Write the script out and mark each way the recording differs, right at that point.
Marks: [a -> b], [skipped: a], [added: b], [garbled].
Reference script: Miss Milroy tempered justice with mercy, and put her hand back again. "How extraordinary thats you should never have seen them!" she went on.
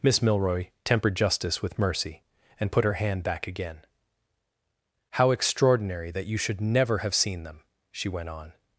Miss Milroy tempered justice with mercy, and put her hand back again. "How extraordinary [thats -> that] you should never have seen them!" she went on.